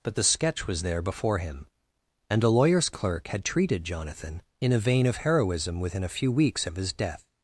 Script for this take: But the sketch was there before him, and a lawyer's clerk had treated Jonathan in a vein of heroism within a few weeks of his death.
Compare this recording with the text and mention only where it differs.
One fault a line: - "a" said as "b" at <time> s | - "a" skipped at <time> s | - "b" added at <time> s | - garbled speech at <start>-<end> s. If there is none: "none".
none